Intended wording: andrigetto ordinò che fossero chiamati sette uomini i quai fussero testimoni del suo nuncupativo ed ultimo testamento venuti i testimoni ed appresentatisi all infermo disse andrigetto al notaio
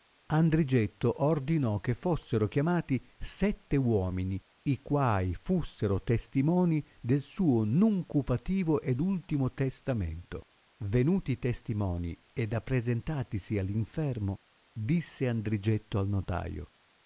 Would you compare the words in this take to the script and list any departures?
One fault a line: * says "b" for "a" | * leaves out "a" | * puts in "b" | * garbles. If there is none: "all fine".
all fine